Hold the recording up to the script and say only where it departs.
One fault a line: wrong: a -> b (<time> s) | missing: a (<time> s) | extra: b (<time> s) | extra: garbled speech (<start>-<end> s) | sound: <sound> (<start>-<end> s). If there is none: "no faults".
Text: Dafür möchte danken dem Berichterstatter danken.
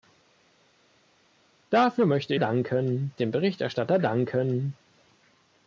no faults